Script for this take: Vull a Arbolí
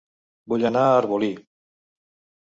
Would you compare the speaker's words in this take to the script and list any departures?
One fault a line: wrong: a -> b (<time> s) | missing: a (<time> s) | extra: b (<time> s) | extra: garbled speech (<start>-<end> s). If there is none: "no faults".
extra: anar (0.7 s)